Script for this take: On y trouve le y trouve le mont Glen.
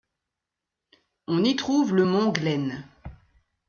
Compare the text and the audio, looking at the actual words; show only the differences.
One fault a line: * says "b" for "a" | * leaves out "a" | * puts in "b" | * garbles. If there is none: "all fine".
* leaves out "y trouve le"